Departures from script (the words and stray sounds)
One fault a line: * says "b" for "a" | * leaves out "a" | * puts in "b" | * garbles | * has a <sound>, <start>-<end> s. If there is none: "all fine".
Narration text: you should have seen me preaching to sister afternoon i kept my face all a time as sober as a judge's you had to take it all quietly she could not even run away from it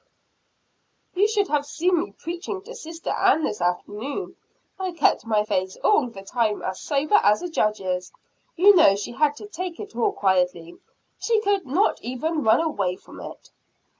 * puts in "ann this"
* says "the" for "a"
* puts in "know she"